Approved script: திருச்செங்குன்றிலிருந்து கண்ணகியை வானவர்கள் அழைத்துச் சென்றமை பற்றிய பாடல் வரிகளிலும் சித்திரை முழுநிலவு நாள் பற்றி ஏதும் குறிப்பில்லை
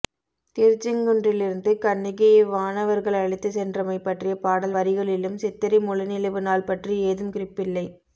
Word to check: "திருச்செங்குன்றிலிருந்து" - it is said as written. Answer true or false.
true